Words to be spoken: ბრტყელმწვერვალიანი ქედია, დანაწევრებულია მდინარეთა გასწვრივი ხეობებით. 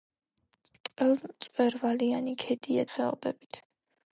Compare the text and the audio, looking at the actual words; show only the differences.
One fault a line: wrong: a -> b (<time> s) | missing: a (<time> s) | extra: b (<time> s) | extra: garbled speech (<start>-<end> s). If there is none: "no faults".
missing: დანაწევრებულია მდინარეთა გასწვრივი (2.9 s)